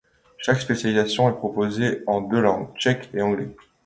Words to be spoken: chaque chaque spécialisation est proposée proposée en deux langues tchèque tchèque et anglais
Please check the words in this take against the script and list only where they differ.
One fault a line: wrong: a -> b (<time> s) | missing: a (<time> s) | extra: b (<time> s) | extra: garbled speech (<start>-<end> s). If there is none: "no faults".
missing: chaque (0.6 s)
missing: proposée (2.0 s)
missing: tchèque (3.1 s)